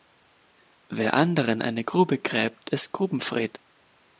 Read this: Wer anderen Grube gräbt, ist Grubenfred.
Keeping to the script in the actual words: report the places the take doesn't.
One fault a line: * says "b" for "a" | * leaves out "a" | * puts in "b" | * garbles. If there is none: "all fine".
* puts in "eine"